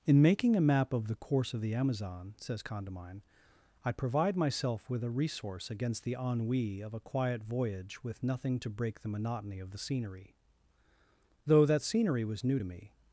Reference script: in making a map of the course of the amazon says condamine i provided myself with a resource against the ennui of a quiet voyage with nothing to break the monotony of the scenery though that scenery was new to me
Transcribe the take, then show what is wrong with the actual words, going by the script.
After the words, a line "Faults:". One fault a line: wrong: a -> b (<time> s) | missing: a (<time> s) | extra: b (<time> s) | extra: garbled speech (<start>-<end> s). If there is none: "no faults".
in making a map of the course of the amazon says condamine i provide myself with a resource against the ennui of a quiet voyage with nothing to break the monotony of the scenery though that scenery was new to me
Faults:
wrong: provided -> provide (3.9 s)